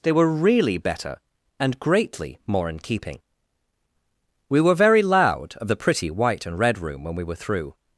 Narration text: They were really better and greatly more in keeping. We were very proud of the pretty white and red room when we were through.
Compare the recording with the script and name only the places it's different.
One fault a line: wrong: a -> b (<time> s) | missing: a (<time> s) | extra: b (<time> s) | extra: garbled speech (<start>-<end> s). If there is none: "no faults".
wrong: proud -> loud (5.0 s)